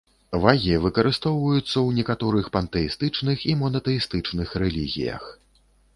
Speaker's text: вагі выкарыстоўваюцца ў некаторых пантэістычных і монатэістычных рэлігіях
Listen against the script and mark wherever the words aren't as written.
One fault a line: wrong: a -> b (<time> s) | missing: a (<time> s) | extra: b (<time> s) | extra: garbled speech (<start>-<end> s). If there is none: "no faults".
no faults